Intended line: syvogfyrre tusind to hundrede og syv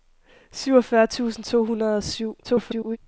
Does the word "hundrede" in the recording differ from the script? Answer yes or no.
no